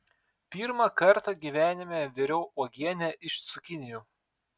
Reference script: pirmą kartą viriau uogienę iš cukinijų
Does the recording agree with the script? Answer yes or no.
no